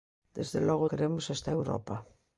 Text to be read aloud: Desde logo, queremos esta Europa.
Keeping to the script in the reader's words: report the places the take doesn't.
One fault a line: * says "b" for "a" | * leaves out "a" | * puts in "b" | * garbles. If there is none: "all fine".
all fine